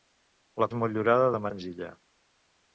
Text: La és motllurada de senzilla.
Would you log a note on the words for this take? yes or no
no